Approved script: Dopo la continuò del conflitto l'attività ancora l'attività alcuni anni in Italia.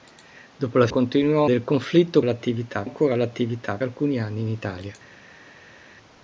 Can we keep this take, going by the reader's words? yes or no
yes